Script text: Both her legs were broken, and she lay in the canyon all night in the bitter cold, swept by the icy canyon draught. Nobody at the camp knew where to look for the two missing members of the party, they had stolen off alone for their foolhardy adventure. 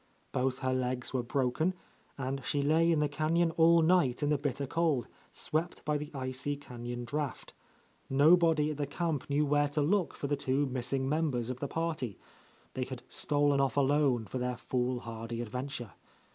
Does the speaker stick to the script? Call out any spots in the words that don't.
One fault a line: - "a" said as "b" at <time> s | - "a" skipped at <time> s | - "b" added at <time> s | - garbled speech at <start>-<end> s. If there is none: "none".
none